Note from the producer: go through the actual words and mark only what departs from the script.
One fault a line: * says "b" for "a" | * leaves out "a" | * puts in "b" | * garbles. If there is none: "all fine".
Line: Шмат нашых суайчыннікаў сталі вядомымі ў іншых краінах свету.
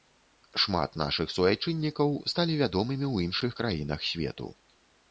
all fine